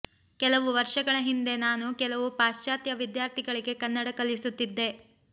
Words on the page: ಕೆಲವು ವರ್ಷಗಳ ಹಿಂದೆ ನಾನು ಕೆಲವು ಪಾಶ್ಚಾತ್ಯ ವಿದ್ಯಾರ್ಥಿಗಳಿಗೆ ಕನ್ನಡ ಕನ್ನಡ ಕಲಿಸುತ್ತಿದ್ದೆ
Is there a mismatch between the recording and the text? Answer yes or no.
yes